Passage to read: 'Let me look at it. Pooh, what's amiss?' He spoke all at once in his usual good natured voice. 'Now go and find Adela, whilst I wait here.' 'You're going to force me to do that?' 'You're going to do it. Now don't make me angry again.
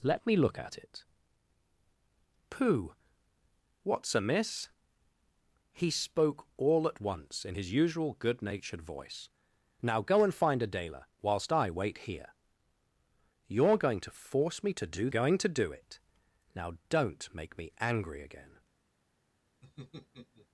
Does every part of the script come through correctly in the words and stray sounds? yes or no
no